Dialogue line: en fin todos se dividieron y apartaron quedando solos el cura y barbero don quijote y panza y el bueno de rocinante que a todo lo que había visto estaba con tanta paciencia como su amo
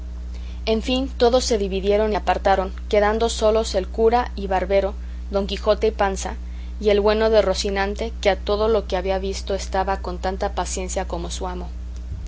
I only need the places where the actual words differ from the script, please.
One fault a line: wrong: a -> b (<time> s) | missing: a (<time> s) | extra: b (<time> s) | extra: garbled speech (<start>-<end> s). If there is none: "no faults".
no faults